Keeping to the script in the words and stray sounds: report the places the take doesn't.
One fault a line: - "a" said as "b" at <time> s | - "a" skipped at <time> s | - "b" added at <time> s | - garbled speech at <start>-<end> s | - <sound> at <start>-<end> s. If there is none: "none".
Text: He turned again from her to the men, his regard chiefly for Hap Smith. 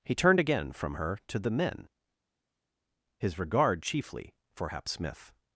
none